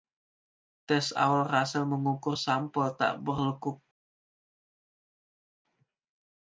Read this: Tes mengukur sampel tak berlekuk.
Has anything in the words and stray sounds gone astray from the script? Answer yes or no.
yes